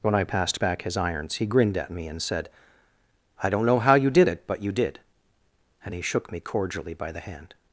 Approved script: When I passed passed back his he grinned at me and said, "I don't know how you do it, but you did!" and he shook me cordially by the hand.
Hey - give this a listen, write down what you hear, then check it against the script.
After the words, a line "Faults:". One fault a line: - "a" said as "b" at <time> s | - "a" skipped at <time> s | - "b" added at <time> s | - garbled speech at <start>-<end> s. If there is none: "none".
When I passed back his irons, he grinned at me and said, "I don't know how you did it, but you did!" and he shook me cordially by the hand.
Faults:
- "passed" skipped at 0.6 s
- "irons" added at 1.0 s
- "do" said as "did" at 4.1 s